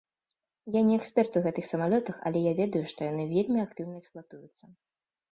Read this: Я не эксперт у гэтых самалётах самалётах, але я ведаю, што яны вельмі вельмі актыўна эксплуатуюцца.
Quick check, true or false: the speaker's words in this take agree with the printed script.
false